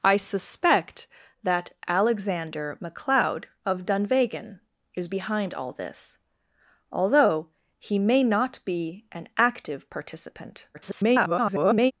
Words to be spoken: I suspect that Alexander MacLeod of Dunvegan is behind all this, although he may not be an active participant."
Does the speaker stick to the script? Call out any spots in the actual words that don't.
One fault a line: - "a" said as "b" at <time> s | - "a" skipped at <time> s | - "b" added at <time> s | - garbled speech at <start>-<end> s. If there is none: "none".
- garbled speech at 10.7-11.9 s